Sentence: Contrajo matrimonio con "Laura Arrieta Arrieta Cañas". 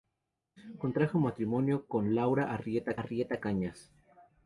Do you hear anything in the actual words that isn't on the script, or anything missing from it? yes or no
no